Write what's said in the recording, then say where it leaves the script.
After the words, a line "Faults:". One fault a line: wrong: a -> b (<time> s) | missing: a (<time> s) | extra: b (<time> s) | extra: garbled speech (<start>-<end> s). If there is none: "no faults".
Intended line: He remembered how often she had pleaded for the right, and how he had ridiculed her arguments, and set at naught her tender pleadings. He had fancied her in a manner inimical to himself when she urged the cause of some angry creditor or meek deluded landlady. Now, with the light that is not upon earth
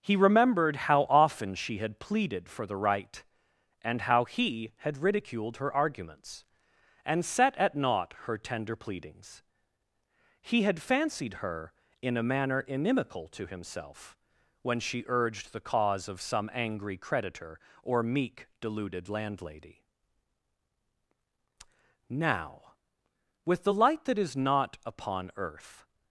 He remembered how often she had pleaded for the right, and how he had ridiculed her arguments, and set at naught her tender pleadings. He had fancied her in a manner inimical to himself when she urged the cause of some angry creditor or meek deluded landlady. Now, with the light that is not upon earth
Faults:
no faults